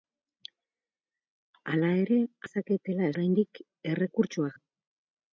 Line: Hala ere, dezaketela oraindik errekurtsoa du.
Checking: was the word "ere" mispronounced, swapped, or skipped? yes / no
no